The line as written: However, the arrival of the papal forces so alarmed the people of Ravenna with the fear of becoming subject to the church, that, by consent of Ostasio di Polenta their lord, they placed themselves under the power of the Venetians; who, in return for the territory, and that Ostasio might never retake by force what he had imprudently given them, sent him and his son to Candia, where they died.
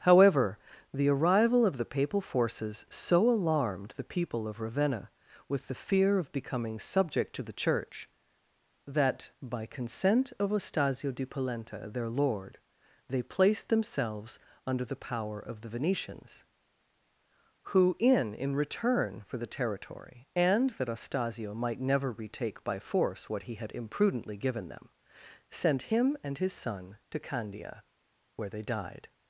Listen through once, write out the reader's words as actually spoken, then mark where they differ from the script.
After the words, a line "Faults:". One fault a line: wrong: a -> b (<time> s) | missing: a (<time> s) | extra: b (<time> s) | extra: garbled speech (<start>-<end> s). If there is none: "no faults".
However, the arrival of the papal forces so alarmed the people of Ravenna with the fear of becoming subject to the church, that, by consent of Ostasio di Polenta their lord, they placed themselves under the power of the Venetians; who, in in return for the territory, and that Ostasio might never retake by force what he had imprudently given them, sent him and his son to Candia, where they died.
Faults:
extra: in (18.3 s)